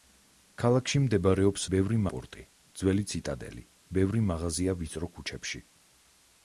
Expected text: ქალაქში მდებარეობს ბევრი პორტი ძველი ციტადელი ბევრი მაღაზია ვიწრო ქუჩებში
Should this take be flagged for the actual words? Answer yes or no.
no